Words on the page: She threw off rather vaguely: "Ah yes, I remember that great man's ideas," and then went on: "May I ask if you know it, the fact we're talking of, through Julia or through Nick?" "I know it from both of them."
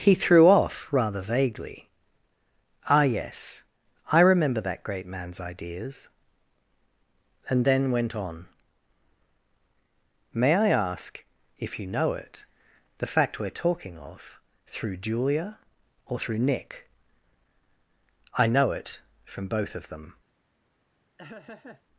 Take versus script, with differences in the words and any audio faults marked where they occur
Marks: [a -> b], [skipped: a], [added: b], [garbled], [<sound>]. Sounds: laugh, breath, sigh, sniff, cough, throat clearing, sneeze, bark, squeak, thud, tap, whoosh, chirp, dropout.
[She -> He] threw off rather vaguely: "Ah yes, I remember that great man's ideas," and then went on: "May I ask if you know it, the fact we're talking of, through Julia or through Nick?" "I know it from both of them." [laugh]